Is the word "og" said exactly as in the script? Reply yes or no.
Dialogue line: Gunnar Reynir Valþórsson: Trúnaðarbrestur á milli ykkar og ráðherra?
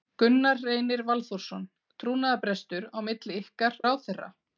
no